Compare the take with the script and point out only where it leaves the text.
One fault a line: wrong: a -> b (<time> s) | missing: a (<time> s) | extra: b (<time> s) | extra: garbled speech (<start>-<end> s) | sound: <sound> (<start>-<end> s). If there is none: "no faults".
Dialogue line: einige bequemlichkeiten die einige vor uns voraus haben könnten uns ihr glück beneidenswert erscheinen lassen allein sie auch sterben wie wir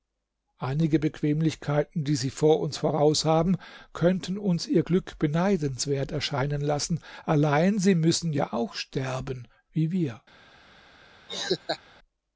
wrong: einige -> sie (2.1 s)
extra: müssen ja (8.0 s)
sound: laugh (11.3-11.8 s)